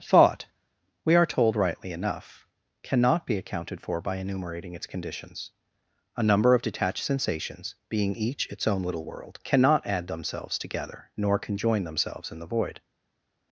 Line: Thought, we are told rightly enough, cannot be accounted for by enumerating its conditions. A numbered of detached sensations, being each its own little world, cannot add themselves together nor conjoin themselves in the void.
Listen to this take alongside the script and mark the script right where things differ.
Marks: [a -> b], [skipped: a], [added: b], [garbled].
Thought, we are told rightly enough, cannot be accounted for by enumerating its conditions. A [numbered -> number] of detached sensations, being each its own little world, cannot add themselves together nor conjoin themselves in the void.